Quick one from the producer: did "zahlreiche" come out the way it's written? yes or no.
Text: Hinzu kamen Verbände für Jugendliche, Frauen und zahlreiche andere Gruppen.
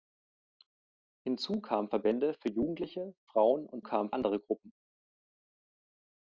no